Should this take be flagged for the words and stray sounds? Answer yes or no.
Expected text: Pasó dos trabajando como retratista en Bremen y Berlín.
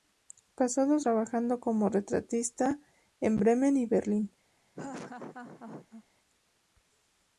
yes